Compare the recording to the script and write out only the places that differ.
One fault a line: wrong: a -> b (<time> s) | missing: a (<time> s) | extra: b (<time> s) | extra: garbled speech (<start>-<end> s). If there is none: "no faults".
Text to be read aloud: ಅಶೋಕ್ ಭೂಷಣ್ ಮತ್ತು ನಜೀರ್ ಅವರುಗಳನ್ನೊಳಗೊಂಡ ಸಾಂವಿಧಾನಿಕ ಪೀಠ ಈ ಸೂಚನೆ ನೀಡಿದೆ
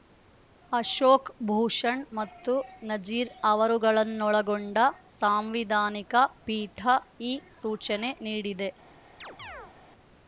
no faults